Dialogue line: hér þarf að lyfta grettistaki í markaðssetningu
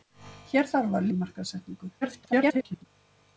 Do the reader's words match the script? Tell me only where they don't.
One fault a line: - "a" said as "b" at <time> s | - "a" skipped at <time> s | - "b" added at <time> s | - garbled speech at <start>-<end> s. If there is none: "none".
- "lyfta grettistaki" skipped at 1.1 s
- garbled speech at 2.0-2.9 s